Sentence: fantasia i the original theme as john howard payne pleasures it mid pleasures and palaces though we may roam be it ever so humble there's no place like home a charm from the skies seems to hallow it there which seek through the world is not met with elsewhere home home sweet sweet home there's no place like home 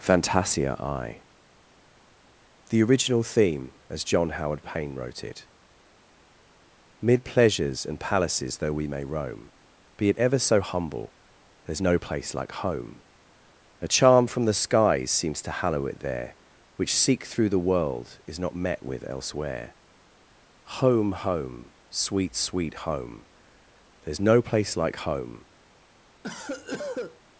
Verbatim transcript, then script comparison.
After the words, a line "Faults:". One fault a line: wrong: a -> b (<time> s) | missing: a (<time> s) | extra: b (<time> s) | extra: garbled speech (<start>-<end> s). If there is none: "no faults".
fantasia i the original theme as john howard payne wrote it mid pleasures and palaces though we may roam be it ever so humble there's no place like home a charm from the skies seems to hallow it there which seek through the world is not met with elsewhere home home sweet sweet home there's no place like home
Faults:
wrong: pleasures -> wrote (5.0 s)